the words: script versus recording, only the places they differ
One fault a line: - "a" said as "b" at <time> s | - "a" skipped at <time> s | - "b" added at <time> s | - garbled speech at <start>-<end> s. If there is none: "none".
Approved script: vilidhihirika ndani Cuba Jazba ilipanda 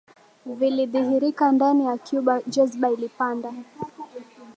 - "ya" added at 1.9 s